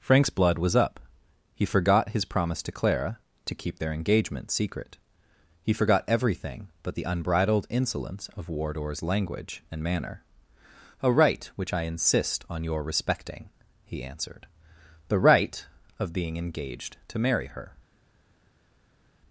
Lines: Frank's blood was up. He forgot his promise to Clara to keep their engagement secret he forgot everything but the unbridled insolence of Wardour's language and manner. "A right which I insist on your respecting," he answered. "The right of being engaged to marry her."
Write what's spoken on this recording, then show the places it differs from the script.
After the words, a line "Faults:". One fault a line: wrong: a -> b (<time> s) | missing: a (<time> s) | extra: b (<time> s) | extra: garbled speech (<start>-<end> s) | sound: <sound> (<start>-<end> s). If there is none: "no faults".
Frank's blood was up. He forgot his promise to Clara to keep their engagement secret he forgot everything but the unbridled insolence of Wardour's language and manner. "A right which I insist on your respecting," he answered. "The right of being engaged to marry her."
Faults:
no faults